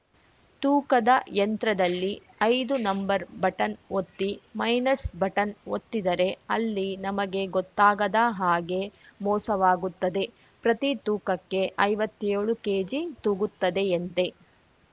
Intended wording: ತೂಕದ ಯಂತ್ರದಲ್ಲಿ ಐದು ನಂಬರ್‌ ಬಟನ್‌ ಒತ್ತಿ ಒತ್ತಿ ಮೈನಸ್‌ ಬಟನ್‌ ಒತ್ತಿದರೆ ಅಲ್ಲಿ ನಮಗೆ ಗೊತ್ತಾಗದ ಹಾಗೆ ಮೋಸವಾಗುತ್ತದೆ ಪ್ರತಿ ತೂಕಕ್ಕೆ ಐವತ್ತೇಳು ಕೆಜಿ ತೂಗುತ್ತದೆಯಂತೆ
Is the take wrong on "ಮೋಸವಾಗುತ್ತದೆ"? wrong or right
right